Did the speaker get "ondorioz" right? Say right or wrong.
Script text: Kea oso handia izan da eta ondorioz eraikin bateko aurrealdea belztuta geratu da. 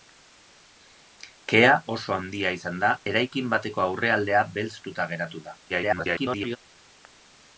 wrong